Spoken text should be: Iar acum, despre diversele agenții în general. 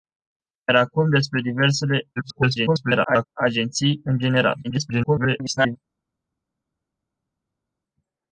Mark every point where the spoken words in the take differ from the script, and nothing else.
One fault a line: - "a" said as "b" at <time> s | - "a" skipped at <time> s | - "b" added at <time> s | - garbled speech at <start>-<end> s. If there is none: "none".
- garbled speech at 2.2-3.3 s
- garbled speech at 4.6-5.8 s